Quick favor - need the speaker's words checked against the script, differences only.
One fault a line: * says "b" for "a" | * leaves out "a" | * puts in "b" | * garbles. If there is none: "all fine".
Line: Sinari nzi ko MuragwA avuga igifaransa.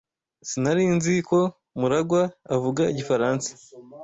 all fine